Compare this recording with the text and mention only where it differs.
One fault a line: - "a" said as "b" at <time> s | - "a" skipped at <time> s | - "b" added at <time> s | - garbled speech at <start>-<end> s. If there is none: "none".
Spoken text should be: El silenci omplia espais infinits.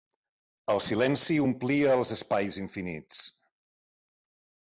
- "els" added at 2.0 s